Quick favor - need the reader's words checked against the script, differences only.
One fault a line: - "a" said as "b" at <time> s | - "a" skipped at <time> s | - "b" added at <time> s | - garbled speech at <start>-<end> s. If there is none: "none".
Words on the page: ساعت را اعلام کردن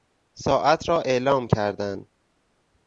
none